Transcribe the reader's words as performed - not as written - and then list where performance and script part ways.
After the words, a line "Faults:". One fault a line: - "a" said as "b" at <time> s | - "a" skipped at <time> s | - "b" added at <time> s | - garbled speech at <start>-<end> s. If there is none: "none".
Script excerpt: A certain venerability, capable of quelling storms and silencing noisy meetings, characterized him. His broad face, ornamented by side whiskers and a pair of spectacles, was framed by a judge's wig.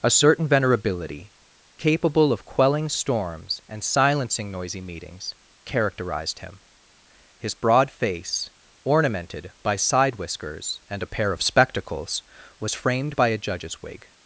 A certain venerability, capable of quelling storms and silencing noisy meetings, characterized him. His broad face, ornamented by side whiskers and a pair of spectacles, was framed by a judge's wig.
Faults:
none